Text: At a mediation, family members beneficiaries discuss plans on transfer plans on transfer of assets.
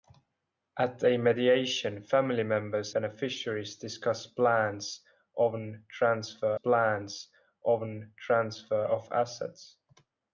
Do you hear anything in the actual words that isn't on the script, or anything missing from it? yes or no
no